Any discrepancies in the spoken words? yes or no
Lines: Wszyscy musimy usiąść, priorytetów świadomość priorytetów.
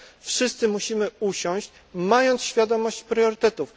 yes